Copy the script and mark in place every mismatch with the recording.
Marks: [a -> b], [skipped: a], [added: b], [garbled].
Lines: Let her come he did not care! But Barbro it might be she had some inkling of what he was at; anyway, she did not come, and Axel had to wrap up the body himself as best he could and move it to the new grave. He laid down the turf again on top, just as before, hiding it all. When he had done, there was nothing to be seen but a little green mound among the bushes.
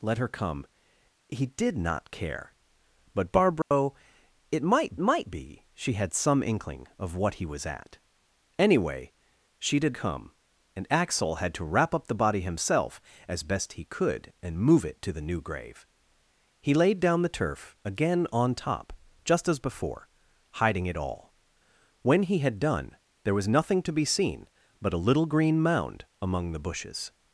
Let her come he did not care! But Barbro it might [added: might] be she had some inkling of what he was at; anyway, she did [skipped: not] come, and Axel had to wrap up the body himself as best he could and move it to the new grave. He laid down the turf again on top, just as before, hiding it all. When he had done, there was nothing to be seen but a little green mound among the bushes.